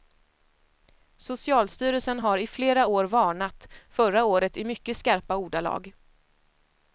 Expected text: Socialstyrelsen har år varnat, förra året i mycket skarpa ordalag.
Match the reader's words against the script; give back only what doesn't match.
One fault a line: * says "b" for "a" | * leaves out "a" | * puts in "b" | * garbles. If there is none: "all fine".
* puts in "i flera"